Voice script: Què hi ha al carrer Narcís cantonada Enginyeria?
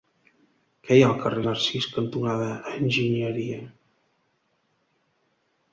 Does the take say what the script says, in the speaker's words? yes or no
yes